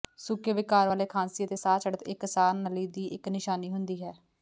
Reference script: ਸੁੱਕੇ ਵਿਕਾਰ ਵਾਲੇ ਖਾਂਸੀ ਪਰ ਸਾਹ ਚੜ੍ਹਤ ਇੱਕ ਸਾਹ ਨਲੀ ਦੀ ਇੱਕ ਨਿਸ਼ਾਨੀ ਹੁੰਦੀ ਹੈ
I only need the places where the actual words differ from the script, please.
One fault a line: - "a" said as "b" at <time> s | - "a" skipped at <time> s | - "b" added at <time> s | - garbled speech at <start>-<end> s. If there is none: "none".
- "ਪਰ" said as "ਅਤੇ" at 1.4 s